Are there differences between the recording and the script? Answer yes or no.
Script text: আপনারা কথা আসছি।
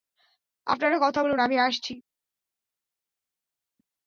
yes